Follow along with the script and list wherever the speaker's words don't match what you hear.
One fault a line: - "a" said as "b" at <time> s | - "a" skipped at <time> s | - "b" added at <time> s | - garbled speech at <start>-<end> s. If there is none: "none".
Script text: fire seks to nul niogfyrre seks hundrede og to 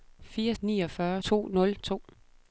- "seks" said as "niogfyrre" at 0.6 s
- "niogfyrre seks hundrede" skipped at 1.8 s